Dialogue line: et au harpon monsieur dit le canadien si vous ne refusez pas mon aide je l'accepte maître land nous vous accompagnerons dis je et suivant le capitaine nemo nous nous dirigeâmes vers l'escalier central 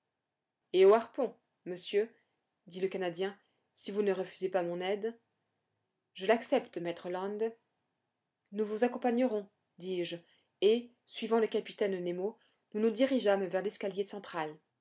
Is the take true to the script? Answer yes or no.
yes